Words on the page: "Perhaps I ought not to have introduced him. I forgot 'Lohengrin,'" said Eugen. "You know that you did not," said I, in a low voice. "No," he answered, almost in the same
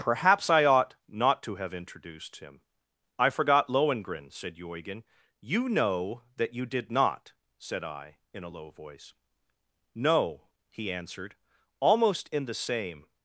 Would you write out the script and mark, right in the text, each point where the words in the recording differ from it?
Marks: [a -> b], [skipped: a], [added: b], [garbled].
"Perhaps I ought not to have introduced him. I forgot 'Lohengrin,'" said Eugen. "You know that you did not," said I, in a low voice. "No," he answered, almost in the same